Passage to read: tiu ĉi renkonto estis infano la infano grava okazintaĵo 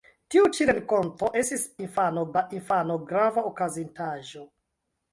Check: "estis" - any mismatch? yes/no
no